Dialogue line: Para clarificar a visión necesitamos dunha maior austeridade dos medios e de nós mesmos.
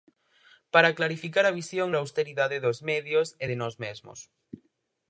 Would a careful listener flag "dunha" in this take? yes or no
yes